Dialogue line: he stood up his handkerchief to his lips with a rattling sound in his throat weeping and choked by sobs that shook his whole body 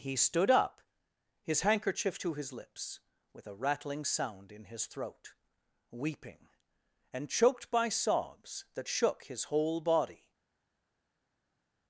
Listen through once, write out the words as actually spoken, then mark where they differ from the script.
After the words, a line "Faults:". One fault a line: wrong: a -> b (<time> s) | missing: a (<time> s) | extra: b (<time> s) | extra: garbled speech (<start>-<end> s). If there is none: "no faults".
he stood up his handkerchief to his lips with a rattling sound in his throat weeping and choked by sobs that shook his whole body
Faults:
no faults